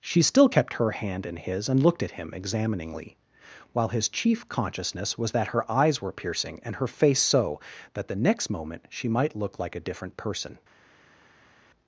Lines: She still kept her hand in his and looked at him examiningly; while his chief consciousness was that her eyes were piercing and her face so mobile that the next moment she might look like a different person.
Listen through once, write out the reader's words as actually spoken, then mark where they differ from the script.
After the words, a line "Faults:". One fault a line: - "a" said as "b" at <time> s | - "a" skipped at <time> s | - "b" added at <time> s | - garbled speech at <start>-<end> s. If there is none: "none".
She still kept her hand in his and looked at him examiningly; while his chief consciousness was that her eyes were piercing and her face so that the next moment she might look like a different person.
Faults:
- "mobile" skipped at 7.6 s